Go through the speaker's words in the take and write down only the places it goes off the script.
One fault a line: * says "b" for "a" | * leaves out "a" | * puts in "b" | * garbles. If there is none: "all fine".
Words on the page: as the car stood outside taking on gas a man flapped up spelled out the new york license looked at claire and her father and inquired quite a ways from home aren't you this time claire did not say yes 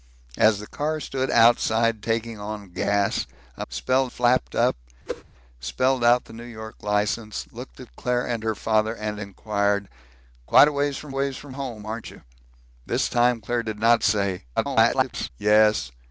* says "spelled" for "man"
* puts in "ways from"
* garbles